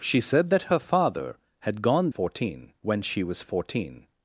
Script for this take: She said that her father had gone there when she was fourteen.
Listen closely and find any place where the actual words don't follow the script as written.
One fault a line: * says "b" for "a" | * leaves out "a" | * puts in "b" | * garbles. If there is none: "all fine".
* says "fourteen" for "there"